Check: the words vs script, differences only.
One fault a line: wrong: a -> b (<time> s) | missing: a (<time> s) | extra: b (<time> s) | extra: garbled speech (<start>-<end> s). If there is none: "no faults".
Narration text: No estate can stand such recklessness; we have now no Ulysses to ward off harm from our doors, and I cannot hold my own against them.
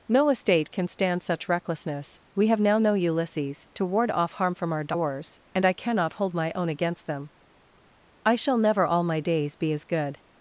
extra: I shall never all my days be as good (8.2 s)